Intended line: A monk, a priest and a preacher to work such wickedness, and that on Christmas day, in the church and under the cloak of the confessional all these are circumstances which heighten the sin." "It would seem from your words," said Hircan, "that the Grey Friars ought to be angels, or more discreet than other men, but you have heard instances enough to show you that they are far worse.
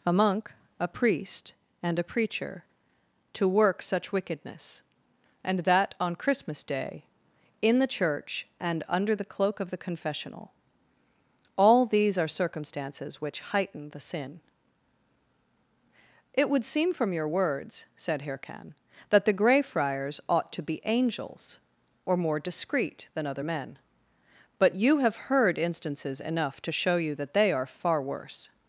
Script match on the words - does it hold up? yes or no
yes